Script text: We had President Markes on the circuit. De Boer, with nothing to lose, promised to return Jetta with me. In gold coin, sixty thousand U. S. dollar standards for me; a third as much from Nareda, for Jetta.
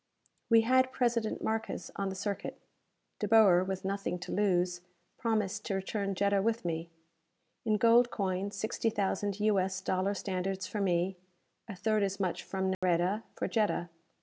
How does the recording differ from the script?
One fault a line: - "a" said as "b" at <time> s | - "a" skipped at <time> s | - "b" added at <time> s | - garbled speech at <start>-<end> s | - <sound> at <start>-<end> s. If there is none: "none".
- dropout at 12.7-12.8 s